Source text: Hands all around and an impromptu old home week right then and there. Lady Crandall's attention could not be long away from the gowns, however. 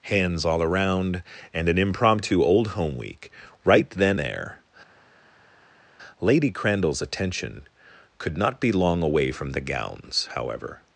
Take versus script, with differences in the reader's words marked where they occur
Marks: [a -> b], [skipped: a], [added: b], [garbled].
Hands all around and an impromptu old home week right then [skipped: and] there. Lady Crandall's attention could not be long away from the gowns, however.